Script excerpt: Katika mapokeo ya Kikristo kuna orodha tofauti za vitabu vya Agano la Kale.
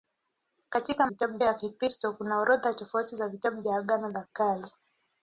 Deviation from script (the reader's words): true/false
true